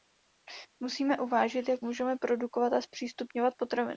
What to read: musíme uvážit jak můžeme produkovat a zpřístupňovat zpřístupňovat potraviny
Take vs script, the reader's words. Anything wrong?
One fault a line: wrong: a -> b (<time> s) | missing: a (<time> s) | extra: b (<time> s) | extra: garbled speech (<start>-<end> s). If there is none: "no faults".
missing: zpřístupňovat (3.5 s)